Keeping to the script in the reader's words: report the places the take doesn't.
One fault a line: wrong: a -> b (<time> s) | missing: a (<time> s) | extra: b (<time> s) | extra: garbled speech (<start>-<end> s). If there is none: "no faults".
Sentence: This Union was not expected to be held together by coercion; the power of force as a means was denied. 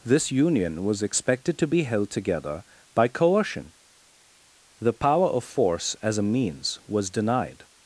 missing: not (1.0 s)